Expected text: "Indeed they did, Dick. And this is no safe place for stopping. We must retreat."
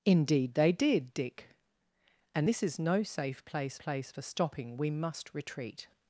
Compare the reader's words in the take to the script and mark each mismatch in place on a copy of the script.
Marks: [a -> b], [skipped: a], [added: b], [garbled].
"Indeed they did, Dick. And this is no safe place [added: place] for stopping. We must retreat."